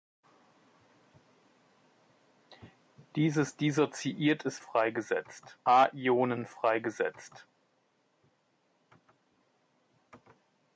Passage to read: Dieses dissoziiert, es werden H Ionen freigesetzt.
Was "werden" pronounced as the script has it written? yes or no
no